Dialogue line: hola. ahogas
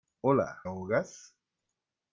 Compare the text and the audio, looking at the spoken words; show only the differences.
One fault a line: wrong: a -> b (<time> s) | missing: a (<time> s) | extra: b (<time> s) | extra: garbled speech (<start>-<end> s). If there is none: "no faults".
no faults